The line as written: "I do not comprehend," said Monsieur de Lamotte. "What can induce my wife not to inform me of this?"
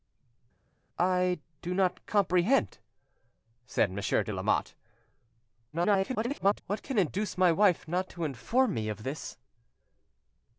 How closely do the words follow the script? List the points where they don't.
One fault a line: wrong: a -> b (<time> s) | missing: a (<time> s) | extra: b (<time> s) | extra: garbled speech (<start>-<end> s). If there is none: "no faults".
extra: garbled speech (5.7-6.6 s)